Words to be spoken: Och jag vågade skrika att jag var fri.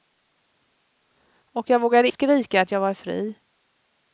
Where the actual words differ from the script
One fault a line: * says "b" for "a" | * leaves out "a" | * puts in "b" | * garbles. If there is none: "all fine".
all fine